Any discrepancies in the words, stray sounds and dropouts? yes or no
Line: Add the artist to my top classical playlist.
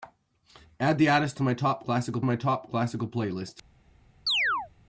yes